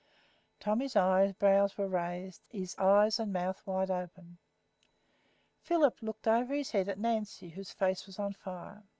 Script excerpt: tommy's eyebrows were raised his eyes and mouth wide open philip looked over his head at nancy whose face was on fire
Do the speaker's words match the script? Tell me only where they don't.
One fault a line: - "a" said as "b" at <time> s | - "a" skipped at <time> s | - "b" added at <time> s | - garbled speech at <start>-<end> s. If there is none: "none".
none